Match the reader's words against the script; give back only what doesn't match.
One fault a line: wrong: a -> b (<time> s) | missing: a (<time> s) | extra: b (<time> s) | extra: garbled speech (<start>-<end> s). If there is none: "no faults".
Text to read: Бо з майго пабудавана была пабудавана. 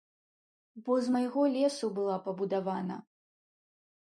wrong: пабудавана -> лесу (1.5 s)